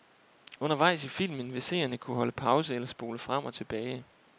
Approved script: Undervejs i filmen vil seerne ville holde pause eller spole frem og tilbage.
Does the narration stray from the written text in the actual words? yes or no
yes